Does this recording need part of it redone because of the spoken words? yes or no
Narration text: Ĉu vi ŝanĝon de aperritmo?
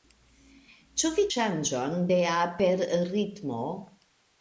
no